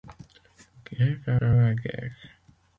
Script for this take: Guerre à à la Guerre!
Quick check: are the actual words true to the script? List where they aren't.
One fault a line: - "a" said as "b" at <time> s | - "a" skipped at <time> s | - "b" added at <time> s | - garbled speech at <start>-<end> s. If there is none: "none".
none